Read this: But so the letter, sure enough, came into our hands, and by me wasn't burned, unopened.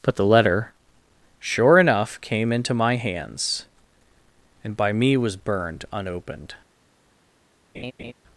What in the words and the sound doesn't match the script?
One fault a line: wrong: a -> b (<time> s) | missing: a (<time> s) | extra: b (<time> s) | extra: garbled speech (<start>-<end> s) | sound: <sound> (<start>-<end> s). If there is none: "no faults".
missing: so (0.1 s)
wrong: our -> my (2.7 s)
wrong: wasn't -> was (5.2 s)
sound: laugh (7.7-8.1 s)